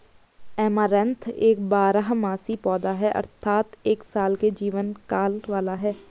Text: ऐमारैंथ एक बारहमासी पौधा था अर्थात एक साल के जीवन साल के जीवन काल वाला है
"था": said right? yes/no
no